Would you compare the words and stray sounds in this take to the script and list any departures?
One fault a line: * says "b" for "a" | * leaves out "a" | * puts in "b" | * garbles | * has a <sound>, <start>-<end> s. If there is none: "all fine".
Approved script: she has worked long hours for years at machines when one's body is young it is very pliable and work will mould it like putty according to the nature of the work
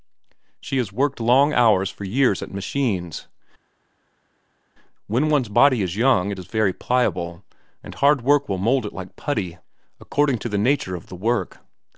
* puts in "hard"